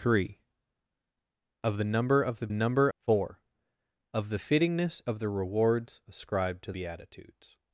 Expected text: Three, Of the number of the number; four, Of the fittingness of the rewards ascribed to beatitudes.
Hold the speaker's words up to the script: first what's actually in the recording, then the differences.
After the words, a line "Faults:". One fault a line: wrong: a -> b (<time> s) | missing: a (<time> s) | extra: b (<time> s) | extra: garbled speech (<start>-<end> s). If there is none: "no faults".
Three, Of the number of the number; four, Of the fittingness of the rewards ascribed to beatitudes.
Faults:
no faults